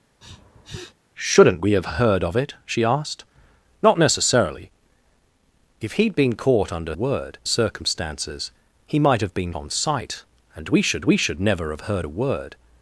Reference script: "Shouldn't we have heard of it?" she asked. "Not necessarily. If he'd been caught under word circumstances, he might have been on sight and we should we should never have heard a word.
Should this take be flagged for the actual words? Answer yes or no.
no